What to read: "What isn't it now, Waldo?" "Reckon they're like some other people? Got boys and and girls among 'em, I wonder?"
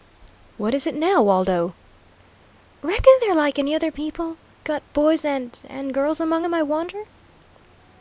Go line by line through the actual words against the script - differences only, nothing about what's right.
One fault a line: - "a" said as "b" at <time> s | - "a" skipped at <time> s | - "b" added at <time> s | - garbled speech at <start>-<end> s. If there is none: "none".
- "isn't" said as "is" at 0.7 s
- "some" said as "any" at 3.6 s